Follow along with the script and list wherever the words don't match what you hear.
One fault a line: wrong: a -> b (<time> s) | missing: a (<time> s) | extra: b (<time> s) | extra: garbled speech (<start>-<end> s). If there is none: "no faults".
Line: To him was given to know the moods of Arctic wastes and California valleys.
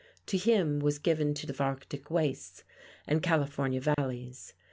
missing: know the moods (1.5 s)